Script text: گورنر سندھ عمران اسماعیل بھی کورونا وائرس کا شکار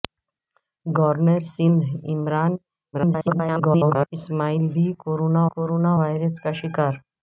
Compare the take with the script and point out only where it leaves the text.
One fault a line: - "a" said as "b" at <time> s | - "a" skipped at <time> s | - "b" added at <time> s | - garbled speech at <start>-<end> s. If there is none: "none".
- garbled speech at 2.9-4.1 s
- "کورونا" added at 5.5 s